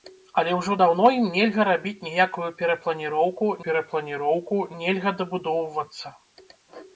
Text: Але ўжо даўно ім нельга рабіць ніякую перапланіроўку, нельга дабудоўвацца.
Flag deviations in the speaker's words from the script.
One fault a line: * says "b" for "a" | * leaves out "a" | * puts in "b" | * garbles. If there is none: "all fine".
* puts in "перапланіроўку"